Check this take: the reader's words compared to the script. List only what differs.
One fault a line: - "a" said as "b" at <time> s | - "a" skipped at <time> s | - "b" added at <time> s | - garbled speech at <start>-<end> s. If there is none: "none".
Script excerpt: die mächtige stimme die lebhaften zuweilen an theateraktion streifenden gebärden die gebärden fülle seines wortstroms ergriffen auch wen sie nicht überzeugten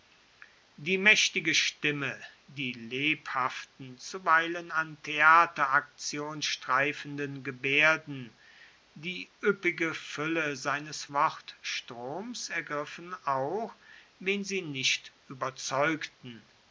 - "gebärden" said as "üppige" at 9.4 s